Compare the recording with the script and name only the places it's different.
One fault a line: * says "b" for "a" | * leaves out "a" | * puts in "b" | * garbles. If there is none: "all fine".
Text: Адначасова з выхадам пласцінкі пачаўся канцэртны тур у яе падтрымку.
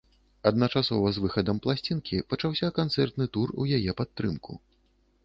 all fine